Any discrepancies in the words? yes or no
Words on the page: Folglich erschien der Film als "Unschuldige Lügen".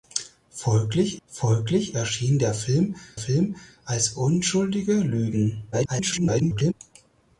yes